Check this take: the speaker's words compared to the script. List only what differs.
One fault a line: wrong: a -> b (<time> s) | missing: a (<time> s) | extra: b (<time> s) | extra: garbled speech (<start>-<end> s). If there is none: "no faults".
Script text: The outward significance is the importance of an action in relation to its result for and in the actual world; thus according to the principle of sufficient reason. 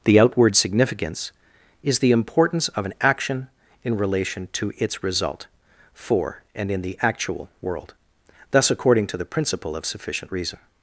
no faults